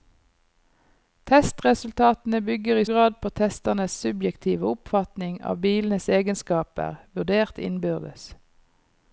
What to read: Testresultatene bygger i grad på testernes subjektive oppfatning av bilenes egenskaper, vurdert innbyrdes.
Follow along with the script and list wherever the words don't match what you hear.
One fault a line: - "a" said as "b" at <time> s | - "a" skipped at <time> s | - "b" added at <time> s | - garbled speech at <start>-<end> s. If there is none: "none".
none